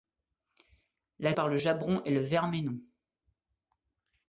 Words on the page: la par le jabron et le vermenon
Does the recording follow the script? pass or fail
pass